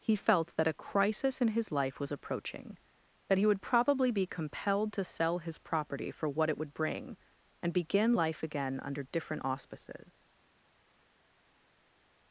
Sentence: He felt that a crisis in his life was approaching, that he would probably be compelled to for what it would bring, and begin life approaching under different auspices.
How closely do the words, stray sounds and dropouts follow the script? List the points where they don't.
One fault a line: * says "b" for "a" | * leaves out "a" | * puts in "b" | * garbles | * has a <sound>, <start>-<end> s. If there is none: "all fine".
* puts in "sell his property"
* says "again" for "approaching"